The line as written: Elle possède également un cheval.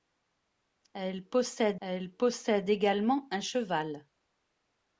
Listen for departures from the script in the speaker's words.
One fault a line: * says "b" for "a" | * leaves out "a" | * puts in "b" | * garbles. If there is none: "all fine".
* puts in "elle possède"